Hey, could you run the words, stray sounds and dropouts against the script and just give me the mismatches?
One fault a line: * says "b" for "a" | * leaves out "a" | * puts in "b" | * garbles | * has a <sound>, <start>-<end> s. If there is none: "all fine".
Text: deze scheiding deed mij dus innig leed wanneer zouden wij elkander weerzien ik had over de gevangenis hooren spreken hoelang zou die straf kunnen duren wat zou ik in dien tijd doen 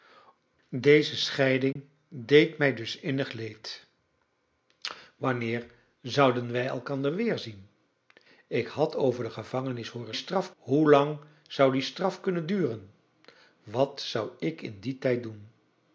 * has a dropout, 1.7-1.8 s
* says "straf" for "spreken"